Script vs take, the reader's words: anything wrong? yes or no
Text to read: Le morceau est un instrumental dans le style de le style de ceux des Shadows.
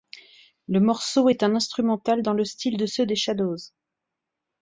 yes